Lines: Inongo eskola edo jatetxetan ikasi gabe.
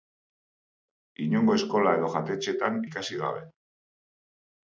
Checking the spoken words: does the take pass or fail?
pass